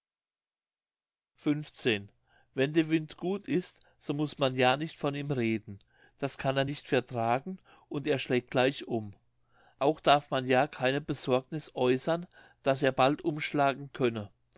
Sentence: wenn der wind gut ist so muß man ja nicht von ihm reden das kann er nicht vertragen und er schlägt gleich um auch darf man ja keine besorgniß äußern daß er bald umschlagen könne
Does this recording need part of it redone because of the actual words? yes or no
no